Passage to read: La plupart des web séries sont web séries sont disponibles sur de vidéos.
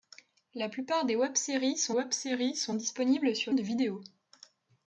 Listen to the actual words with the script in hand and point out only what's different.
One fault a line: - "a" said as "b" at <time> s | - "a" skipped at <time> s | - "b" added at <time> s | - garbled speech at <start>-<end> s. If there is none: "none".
none